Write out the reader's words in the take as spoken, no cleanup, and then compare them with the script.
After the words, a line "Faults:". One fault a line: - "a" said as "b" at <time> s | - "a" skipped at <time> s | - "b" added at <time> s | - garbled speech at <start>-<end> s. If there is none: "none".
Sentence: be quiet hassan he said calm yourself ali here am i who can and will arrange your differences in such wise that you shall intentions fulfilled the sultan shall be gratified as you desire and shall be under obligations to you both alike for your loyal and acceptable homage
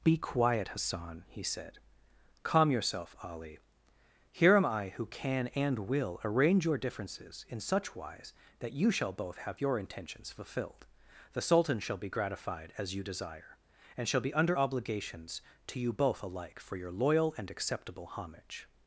be quiet hassan he said calm yourself ali here am i who can and will arrange your differences in such wise that you shall both have your intentions fulfilled the sultan shall be gratified as you desire and shall be under obligations to you both alike for your loyal and acceptable homage
Faults:
- "both have your" added at 9.1 s